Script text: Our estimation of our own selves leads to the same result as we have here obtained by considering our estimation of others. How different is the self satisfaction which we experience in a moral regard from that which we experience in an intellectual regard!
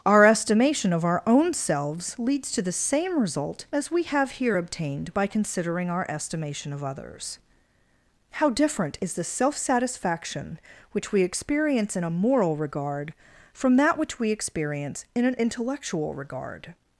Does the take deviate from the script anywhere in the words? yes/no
no